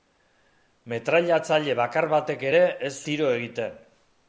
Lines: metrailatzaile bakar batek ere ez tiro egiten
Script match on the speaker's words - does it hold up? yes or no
yes